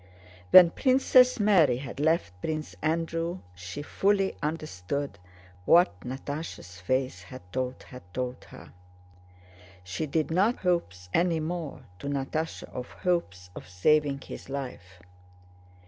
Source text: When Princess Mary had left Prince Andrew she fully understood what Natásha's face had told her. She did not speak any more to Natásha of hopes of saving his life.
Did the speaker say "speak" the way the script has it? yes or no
no